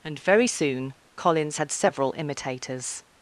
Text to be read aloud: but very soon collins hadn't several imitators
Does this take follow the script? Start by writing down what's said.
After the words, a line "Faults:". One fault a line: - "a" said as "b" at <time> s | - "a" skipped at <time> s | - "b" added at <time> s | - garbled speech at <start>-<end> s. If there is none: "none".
and very soon collins had several imitators
Faults:
- "but" said as "and" at 0.0 s
- "hadn't" said as "had" at 1.6 s